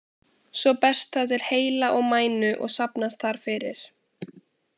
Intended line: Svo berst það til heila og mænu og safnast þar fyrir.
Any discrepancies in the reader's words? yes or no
no